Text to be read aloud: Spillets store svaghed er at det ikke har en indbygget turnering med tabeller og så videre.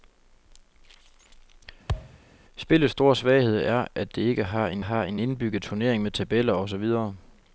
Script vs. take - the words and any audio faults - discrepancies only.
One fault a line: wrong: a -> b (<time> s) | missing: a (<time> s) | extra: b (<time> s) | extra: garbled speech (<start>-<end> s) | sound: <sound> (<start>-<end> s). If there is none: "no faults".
sound: thud (1.9-2.2 s)
extra: har en (4.8 s)